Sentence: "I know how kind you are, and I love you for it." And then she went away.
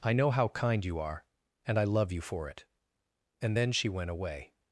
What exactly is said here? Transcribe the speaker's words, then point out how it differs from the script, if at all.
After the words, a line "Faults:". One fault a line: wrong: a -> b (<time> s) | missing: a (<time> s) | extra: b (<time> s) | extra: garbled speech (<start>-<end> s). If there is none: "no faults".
"I know how kind you are, and I love you for it." And then she went away.
Faults:
no faults